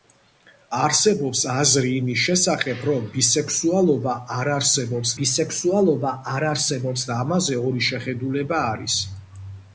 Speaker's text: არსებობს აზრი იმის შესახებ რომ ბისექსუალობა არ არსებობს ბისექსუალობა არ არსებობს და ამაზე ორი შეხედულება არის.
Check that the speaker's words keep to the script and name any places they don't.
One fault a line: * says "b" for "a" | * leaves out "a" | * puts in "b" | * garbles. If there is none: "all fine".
all fine